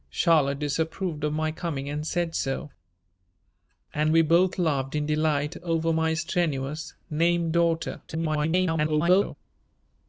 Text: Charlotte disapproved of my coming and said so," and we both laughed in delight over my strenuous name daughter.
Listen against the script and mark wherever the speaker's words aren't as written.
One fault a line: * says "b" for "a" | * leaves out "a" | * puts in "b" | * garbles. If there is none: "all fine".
* garbles